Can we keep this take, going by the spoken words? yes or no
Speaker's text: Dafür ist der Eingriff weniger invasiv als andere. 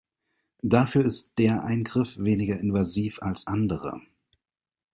yes